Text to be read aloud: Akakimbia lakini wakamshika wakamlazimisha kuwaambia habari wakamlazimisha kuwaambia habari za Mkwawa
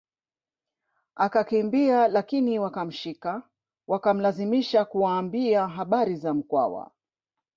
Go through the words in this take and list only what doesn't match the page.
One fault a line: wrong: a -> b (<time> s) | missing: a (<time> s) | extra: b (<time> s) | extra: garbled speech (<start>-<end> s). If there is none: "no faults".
missing: wakamlazimisha kuwaambia habari (6.2 s)